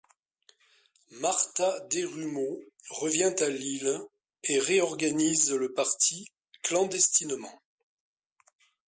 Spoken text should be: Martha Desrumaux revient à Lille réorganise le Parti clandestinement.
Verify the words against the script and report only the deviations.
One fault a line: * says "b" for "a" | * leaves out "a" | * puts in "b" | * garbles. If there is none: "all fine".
* puts in "et"